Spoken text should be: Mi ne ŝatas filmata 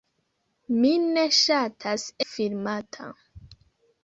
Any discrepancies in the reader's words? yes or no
no